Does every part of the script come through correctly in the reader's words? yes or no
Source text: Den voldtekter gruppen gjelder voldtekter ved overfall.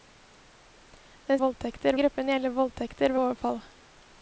yes